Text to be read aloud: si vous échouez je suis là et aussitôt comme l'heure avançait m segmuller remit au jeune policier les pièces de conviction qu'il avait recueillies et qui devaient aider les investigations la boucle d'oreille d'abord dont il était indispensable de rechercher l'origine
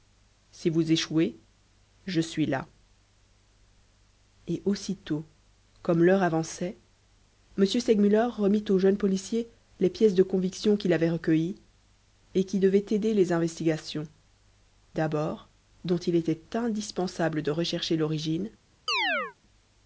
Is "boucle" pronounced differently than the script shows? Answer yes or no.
yes